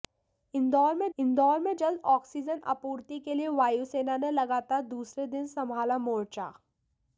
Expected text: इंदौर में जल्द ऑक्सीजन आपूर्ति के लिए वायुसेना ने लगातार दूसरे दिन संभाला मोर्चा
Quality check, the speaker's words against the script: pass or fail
fail